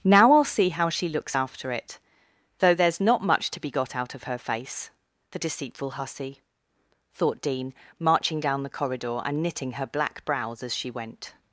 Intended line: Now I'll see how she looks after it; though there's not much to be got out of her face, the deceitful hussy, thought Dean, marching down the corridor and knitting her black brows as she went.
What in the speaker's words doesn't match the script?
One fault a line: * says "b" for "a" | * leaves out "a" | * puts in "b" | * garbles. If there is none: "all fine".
all fine